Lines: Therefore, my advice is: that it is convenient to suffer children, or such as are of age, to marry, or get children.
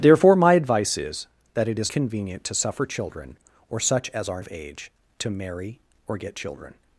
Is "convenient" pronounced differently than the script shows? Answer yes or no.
no